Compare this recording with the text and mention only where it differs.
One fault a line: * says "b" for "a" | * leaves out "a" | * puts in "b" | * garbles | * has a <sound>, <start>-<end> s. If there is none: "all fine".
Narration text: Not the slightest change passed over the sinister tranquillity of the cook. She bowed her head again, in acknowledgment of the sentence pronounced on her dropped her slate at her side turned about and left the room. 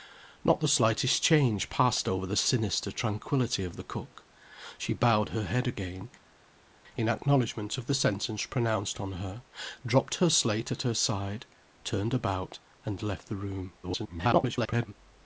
* garbles